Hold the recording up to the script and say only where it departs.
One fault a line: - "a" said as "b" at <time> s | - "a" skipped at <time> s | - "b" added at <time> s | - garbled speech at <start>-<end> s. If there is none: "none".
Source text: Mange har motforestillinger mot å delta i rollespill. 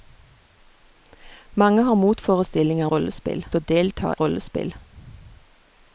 - "mot" said as "rollespill" at 2.9 s
- "i" skipped at 4.1 s